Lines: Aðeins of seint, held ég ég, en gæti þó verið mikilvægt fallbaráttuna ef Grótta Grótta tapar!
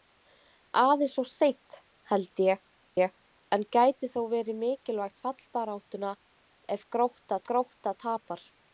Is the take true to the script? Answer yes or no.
yes